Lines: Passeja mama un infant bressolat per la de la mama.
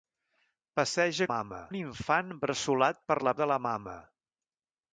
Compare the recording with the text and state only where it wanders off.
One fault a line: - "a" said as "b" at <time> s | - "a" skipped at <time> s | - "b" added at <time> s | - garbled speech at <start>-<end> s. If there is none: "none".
none